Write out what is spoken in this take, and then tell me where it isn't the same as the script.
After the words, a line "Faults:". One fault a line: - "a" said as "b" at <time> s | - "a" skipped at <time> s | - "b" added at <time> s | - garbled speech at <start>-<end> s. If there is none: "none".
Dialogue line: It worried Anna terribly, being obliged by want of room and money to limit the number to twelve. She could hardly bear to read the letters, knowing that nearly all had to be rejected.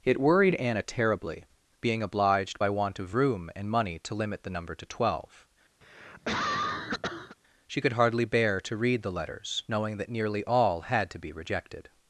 It worried Anna terribly, being obliged by want of room and money to limit the number to twelve. She could hardly bear to read the letters, knowing that nearly all had to be rejected.
Faults:
none